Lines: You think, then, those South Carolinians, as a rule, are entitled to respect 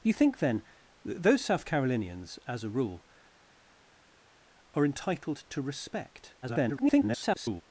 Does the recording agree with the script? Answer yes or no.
no